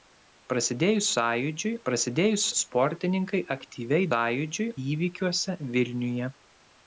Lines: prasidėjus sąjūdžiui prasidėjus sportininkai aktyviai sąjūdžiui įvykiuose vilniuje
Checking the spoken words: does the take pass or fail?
pass